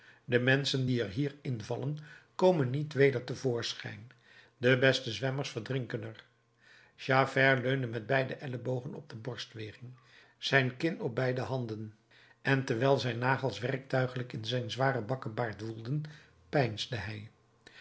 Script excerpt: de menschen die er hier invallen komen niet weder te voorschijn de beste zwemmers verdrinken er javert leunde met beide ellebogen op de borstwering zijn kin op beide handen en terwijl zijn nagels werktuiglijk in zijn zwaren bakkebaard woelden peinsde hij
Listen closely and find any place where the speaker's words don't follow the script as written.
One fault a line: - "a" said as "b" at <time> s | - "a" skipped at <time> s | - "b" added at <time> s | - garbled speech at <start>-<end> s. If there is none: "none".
none